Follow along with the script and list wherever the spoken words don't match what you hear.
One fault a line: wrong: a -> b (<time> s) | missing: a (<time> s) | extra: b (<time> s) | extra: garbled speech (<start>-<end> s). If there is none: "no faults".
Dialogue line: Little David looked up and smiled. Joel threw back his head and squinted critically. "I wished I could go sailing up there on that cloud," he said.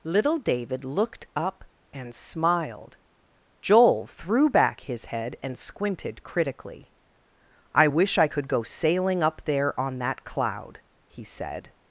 wrong: wished -> wish (7.8 s)